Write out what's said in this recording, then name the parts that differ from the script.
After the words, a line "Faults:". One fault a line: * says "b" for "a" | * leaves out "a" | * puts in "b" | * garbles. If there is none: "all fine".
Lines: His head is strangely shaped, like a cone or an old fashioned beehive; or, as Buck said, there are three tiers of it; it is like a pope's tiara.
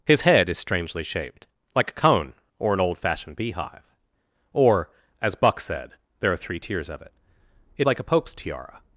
His head is strangely shaped, like a cone or an old fashioned beehive; or, as Buck said, there are three tiers of it; it like a pope's tiara.
Faults:
* leaves out "is"